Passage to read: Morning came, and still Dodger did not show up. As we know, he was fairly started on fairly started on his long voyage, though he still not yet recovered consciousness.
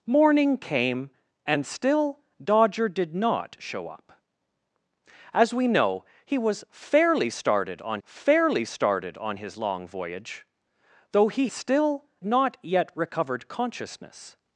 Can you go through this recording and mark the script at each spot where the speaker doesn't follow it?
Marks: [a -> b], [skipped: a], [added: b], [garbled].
Morning came, and still Dodger did not show up. As we know, he was fairly started on fairly started on his long voyage, though he still not yet recovered consciousness.